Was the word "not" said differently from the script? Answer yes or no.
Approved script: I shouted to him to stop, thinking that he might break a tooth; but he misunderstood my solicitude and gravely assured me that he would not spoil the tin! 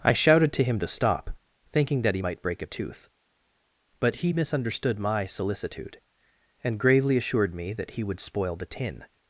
yes